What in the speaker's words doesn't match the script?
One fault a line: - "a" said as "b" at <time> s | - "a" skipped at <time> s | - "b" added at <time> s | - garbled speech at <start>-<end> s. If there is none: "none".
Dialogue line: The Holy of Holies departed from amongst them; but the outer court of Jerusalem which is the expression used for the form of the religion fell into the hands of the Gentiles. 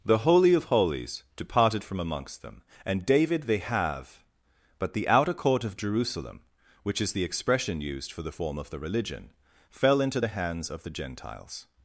- "and david they have" added at 2.9 s